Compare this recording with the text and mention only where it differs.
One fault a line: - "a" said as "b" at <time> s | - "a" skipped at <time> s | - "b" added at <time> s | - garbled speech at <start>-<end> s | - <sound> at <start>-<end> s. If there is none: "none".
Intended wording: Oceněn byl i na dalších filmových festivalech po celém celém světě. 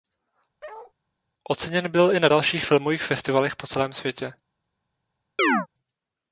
- bark at 0.6-0.9 s
- "celém" skipped at 3.9 s
- chirp at 5.4-5.7 s